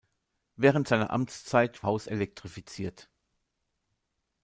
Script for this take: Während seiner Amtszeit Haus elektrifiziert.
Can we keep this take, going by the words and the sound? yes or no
yes